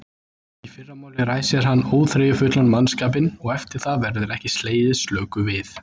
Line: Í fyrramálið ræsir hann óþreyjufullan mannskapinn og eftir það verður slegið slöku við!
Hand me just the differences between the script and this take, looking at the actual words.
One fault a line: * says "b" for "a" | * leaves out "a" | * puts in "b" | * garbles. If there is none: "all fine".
* puts in "ekki"